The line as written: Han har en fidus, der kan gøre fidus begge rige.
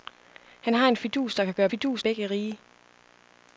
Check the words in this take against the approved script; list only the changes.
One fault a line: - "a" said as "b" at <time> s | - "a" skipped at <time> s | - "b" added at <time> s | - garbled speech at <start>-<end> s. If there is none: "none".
none